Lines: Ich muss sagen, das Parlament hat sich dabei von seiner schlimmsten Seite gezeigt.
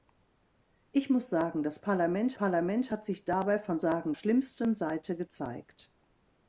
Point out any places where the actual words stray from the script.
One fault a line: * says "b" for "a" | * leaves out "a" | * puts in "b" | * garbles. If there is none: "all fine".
* puts in "Parlament"
* says "sagen" for "seiner"